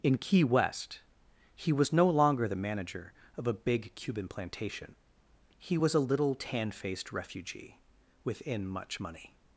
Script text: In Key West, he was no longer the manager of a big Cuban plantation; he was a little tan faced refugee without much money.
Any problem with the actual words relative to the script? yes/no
yes